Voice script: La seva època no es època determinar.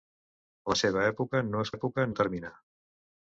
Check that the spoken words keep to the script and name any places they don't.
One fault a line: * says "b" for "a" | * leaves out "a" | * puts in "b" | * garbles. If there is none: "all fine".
all fine